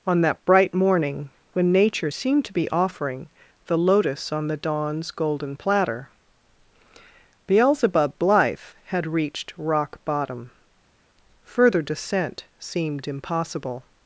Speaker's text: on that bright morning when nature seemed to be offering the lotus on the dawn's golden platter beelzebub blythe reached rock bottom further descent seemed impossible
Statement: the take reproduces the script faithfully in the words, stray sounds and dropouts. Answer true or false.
false